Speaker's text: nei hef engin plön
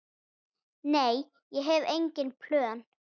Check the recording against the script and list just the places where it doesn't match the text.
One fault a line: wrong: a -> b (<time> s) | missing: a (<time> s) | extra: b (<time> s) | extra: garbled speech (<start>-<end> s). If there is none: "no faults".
extra: ég (1.5 s)